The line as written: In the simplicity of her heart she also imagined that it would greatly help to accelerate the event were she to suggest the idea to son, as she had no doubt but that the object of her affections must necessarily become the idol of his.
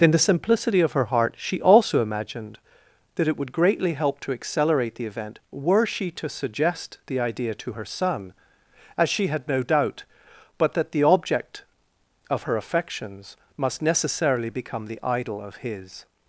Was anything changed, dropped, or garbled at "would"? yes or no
no